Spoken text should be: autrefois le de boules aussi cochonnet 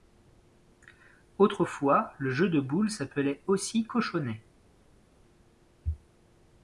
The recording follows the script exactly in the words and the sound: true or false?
false